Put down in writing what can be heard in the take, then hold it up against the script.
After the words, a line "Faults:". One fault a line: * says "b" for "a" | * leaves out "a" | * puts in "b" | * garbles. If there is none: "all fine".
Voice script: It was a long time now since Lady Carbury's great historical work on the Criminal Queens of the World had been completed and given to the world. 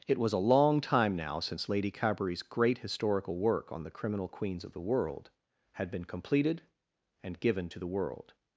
It was a long time now since Lady Carbury's great historical work on the Criminal Queens of the World had been completed and given to the world.
Faults:
all fine